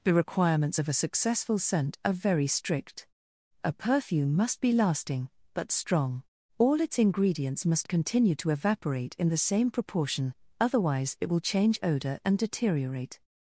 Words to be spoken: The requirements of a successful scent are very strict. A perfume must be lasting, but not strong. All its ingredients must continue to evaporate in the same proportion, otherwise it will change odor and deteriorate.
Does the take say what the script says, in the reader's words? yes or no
no